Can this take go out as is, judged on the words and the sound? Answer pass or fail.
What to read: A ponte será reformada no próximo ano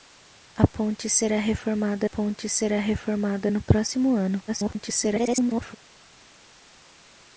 fail